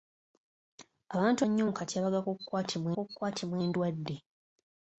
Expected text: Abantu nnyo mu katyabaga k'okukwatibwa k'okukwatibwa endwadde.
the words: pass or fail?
pass